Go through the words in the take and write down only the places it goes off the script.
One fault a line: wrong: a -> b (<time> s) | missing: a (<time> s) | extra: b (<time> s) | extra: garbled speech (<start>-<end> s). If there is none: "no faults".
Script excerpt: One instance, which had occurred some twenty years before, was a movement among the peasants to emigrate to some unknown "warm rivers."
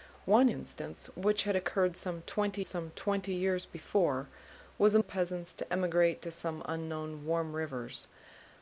extra: some twenty (2.7 s)
missing: movement among (5.0 s)